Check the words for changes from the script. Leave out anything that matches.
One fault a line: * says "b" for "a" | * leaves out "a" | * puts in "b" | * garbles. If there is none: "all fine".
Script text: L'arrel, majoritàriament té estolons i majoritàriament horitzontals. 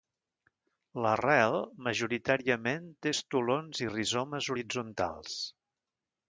* says "rizomes" for "majoritàriament"